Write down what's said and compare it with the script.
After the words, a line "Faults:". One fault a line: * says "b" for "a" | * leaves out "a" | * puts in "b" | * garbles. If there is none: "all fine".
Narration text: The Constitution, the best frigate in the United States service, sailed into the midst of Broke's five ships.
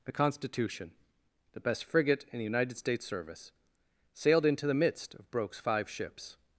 The Constitution, the best frigate in the United States service, sailed into the midst of Broke's five ships.
Faults:
all fine